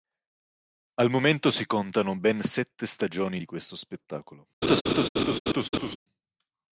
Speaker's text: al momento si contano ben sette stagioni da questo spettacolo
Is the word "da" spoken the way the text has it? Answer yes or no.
no